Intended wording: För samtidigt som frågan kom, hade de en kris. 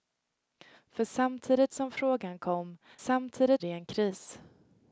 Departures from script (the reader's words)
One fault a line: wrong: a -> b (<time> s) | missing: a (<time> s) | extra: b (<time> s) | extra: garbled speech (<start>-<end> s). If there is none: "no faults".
wrong: hade -> samtidigt (3.0 s)